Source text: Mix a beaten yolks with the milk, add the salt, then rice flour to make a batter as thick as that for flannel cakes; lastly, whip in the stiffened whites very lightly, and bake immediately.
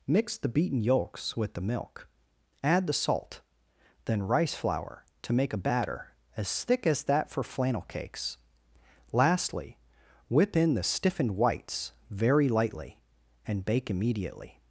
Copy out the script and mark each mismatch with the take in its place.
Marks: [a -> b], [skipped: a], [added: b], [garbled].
Mix [a -> the] beaten yolks with the milk, add the salt, then rice flour to make a batter as thick as that for flannel cakes; lastly, whip in the stiffened whites very lightly, and bake immediately.